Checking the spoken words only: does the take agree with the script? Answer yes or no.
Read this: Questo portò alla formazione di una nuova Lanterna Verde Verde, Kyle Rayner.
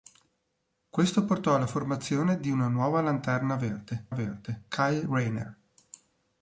yes